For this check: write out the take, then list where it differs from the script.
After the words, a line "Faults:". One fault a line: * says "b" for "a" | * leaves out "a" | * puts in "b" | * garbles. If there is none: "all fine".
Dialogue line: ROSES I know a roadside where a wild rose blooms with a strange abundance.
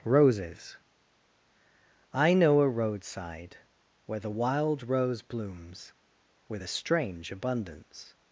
ROSES I know a roadside where the wild rose blooms with a strange abundance.
Faults:
* says "the" for "a"